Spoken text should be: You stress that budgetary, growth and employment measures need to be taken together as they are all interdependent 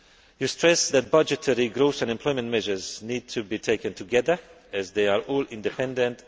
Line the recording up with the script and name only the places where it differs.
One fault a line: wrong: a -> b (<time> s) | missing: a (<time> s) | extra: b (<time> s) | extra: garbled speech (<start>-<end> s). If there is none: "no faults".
no faults